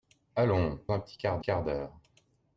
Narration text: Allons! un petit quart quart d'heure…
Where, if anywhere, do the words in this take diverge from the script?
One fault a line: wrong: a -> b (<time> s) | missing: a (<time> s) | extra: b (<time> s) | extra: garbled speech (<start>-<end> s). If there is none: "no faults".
no faults